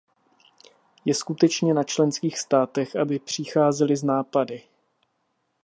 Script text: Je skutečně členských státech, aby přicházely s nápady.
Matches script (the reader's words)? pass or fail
fail